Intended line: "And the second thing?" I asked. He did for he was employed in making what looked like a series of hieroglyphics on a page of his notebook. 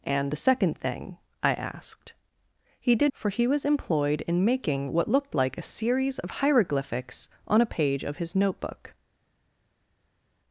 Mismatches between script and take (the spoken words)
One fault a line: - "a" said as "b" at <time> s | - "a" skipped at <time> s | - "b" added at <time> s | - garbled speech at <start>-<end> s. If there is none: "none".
none